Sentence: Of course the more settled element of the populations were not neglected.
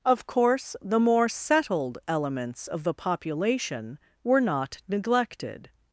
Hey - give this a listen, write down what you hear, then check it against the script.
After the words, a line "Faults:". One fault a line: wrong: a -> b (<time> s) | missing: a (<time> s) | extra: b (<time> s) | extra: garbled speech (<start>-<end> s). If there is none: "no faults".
Of course the more settled elements of the population were not neglected.
Faults:
wrong: element -> elements (2.1 s)
wrong: populations -> population (2.9 s)